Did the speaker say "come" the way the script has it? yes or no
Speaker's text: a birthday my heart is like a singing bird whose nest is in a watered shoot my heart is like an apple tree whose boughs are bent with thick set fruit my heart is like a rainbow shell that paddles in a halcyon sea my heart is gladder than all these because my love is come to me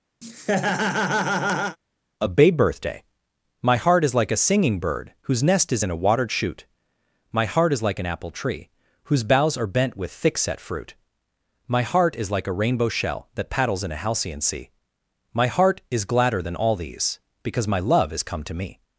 yes